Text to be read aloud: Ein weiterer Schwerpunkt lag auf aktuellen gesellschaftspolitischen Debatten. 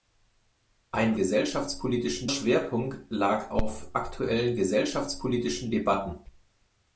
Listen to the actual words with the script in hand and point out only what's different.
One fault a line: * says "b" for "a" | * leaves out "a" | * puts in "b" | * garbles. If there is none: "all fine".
* says "gesellschaftspolitischen" for "weiterer"